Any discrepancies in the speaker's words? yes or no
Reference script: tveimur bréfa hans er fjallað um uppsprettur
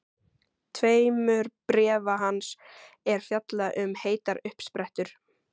yes